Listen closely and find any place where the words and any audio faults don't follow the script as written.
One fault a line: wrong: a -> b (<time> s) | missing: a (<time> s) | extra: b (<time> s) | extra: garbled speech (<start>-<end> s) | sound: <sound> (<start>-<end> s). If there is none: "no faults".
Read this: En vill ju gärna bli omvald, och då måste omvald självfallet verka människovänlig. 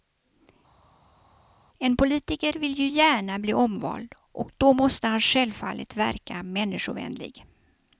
extra: politiker (2.0 s)
wrong: omvald -> han (5.1 s)